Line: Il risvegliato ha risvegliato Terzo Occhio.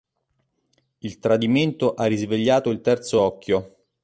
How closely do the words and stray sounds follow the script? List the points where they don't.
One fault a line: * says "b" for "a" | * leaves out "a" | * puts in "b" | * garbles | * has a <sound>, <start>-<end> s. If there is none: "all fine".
* says "tradimento" for "risvegliato"
* puts in "il"